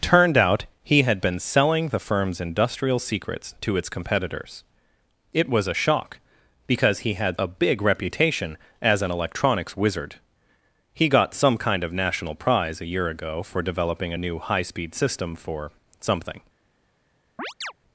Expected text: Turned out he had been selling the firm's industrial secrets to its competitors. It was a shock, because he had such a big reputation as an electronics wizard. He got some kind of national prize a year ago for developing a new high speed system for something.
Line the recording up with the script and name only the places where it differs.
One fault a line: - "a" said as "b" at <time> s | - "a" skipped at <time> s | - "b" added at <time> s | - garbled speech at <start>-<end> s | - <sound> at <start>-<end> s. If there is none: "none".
- "such" skipped at 7.4 s
- chirp at 17.4-17.7 s